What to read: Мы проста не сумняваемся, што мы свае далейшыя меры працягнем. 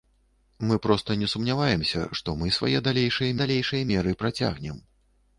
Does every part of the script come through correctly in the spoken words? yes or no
no